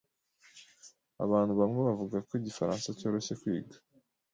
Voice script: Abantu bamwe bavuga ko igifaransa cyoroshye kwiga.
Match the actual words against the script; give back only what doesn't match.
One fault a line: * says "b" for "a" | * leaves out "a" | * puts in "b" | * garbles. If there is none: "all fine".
all fine